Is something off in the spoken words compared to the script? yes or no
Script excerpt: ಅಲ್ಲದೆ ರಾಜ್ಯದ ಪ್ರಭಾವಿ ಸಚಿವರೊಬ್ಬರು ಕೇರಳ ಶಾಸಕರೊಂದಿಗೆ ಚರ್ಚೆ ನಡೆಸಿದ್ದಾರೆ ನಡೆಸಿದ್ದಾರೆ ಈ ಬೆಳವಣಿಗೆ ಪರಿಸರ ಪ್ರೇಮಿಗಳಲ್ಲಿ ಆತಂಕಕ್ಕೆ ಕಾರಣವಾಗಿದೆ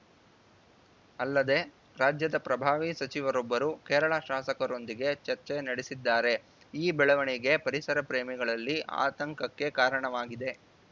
yes